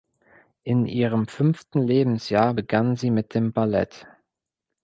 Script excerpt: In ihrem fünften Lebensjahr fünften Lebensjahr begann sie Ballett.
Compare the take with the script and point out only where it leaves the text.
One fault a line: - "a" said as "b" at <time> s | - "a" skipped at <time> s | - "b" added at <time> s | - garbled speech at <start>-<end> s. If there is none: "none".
- "fünften Lebensjahr begann sie" said as "begann sie mit dem" at 2.5 s